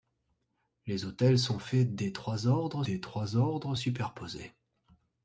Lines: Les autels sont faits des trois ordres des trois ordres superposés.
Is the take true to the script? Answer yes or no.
yes